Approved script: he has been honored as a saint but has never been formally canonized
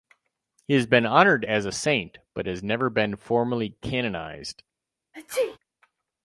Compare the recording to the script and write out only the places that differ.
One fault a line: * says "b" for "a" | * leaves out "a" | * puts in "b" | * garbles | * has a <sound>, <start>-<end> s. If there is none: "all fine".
* has a sneeze, 5.1-5.6 s